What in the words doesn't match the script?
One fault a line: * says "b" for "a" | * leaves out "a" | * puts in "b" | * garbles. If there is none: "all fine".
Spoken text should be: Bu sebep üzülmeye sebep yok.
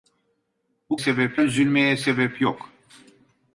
all fine